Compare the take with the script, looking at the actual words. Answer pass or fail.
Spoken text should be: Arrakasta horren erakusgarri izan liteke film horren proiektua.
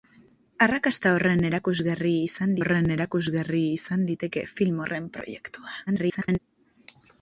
fail